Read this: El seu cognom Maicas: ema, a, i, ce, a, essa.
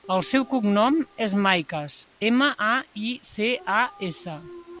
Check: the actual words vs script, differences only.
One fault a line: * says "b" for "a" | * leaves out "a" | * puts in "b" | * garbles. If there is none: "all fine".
* puts in "és"